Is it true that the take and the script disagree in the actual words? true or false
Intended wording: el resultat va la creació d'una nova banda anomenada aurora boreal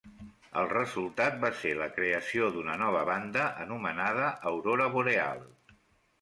true